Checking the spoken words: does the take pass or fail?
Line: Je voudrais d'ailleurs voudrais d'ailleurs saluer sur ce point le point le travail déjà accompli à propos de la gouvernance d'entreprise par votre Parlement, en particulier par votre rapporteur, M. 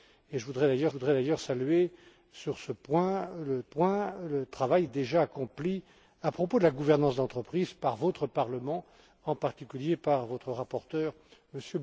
pass